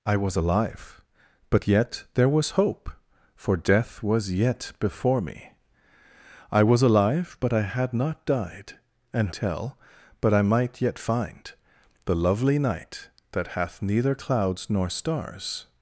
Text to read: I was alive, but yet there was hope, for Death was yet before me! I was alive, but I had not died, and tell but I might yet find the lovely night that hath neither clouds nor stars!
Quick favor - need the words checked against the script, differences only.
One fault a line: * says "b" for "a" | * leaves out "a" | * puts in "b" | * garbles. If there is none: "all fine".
all fine